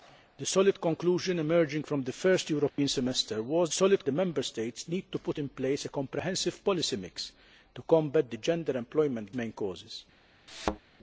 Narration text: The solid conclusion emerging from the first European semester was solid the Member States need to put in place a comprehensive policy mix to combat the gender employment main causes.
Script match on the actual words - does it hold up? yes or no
yes